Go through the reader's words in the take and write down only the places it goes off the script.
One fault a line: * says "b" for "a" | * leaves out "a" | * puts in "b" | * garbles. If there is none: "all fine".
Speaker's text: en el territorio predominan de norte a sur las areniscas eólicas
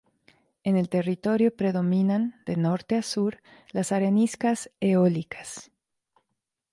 all fine